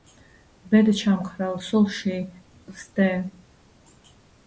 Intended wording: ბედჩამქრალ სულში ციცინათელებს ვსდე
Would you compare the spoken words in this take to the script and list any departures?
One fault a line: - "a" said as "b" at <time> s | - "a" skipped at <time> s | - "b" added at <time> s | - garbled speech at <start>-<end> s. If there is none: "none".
- "ციცინათელებს" skipped at 2.1 s